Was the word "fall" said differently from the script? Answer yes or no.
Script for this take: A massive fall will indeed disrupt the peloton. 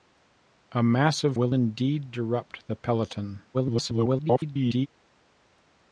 yes